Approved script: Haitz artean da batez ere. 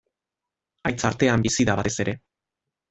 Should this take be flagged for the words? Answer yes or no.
yes